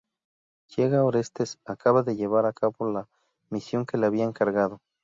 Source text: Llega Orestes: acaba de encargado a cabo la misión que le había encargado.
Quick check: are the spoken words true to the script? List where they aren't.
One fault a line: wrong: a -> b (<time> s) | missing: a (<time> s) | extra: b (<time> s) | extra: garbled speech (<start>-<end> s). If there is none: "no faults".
wrong: encargado -> llevar (2.2 s)